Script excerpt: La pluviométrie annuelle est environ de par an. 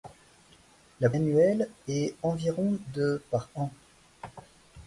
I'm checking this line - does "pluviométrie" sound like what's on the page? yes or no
no